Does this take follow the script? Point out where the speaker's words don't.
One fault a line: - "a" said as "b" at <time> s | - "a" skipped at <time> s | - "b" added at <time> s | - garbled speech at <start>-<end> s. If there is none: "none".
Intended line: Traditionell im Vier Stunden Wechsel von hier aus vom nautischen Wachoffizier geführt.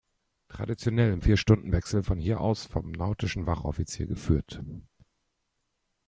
none